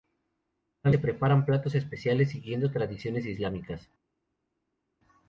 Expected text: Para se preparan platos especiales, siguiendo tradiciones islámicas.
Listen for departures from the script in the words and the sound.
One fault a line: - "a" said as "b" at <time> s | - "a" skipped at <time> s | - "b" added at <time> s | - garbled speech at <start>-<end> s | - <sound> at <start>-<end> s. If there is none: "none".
none